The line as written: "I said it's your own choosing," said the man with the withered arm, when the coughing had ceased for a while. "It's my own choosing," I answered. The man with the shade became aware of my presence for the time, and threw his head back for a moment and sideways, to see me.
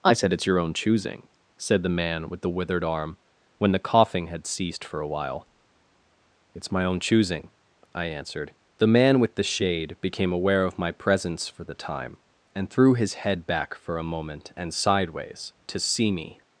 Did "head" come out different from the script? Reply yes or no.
no